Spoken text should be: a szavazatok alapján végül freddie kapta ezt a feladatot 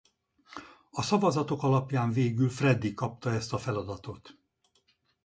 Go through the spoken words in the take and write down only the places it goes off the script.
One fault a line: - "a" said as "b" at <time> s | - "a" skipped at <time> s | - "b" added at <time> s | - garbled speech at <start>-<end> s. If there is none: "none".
none